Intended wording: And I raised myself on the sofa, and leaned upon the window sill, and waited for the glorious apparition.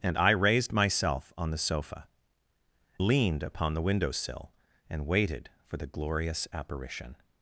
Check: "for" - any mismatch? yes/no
no